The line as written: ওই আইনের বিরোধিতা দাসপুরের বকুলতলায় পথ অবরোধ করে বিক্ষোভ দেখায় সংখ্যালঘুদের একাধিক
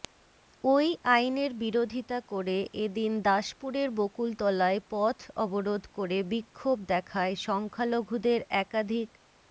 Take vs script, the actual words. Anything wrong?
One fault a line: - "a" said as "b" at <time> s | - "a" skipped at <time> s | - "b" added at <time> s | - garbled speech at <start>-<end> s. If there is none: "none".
- "করে এ দিন" added at 2.3 s